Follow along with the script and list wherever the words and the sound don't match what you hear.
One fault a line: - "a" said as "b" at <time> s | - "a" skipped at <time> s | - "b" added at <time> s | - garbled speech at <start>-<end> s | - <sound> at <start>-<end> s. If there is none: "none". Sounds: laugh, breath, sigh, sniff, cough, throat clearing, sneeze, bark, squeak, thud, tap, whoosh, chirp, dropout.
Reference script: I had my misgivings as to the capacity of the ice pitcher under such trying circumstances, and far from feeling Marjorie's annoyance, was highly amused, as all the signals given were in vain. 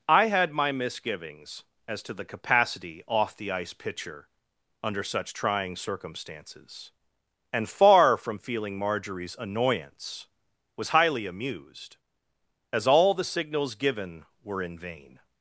- "of" said as "off" at 3.1 s